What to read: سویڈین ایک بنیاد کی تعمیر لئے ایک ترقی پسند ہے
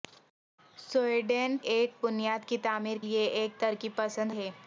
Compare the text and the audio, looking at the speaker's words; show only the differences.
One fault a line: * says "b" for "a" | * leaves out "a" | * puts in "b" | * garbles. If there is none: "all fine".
all fine